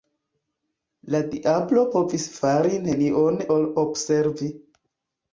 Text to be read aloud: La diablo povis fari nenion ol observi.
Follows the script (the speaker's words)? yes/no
yes